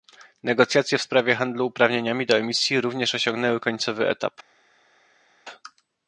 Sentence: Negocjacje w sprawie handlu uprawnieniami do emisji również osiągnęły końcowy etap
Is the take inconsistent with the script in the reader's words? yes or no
no